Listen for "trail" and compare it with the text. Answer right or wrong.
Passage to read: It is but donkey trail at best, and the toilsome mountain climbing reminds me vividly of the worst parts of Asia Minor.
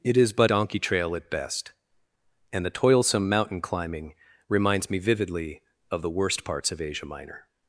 right